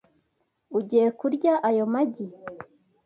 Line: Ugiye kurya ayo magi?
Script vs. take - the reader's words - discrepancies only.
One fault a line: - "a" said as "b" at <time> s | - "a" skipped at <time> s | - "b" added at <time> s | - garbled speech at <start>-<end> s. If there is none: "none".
none